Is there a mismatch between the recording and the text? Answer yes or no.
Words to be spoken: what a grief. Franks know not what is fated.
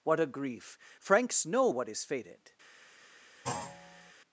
yes